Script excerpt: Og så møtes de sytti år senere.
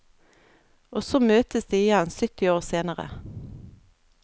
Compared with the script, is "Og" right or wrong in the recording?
right